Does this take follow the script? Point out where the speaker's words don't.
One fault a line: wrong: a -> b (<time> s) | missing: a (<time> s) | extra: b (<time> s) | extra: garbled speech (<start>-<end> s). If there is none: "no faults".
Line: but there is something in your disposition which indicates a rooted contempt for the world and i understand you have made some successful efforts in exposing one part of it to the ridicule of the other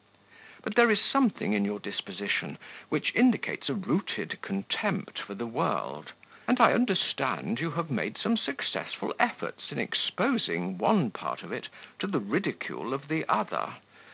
no faults